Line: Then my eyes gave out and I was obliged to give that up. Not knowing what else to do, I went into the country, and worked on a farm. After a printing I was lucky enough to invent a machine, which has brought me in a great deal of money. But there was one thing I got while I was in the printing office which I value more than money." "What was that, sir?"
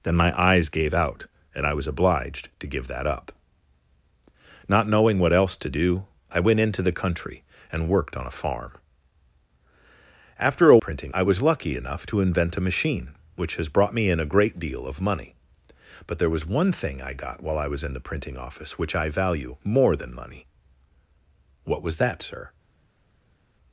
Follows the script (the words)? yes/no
yes